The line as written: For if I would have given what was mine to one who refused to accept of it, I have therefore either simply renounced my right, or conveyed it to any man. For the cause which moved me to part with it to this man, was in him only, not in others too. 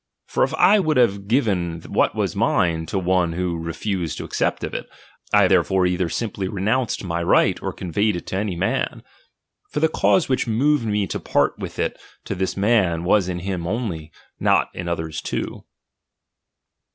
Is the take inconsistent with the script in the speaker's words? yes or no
no